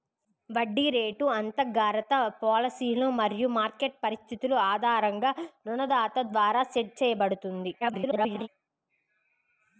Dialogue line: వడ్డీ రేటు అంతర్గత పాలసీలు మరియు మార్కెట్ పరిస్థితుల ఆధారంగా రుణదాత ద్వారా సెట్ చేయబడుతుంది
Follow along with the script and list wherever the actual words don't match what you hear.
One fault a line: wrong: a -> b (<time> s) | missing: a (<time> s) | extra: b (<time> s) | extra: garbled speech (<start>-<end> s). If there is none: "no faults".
extra: garbled speech (7.8-8.5 s)